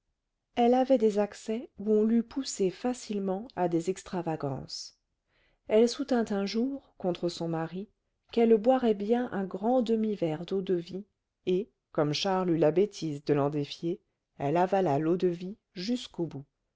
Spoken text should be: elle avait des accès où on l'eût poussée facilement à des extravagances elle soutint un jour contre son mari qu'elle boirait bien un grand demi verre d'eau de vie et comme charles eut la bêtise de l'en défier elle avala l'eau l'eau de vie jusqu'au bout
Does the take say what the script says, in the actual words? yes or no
no